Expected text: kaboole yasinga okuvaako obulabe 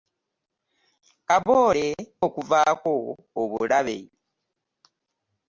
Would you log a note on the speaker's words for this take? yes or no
yes